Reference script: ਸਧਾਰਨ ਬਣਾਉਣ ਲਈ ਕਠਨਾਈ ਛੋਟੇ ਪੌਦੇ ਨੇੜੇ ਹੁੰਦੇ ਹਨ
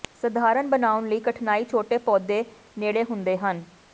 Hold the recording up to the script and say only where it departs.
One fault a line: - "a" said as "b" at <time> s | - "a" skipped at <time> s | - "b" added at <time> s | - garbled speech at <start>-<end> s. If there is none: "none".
none